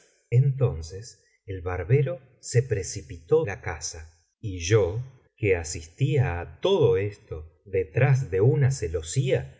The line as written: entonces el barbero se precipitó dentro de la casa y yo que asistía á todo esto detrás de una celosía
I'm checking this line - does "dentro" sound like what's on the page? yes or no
no